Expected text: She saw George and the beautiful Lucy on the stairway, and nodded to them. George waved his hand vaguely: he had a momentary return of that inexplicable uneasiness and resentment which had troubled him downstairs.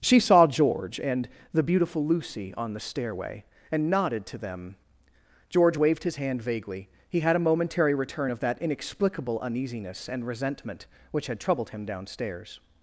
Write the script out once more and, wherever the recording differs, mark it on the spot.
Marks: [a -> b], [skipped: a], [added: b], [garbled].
She saw George and the beautiful Lucy on the stairway, and nodded to them. George waved his hand vaguely: he had a momentary return of that inexplicable uneasiness and resentment which had troubled him downstairs.